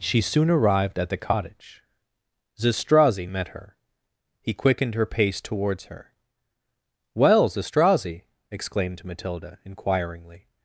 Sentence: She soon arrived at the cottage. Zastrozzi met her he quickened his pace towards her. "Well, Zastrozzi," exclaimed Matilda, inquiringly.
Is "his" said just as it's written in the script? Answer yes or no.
no